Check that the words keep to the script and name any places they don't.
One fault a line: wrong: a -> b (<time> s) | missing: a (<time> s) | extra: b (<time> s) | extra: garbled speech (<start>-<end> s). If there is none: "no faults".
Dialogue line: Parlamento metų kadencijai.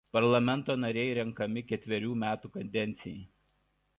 extra: nariai renkami ketverių (0.8 s)